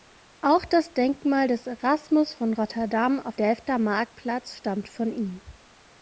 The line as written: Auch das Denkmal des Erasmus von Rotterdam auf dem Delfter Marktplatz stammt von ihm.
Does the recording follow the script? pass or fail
fail